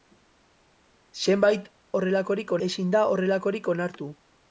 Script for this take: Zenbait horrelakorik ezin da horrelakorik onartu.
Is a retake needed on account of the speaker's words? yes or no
no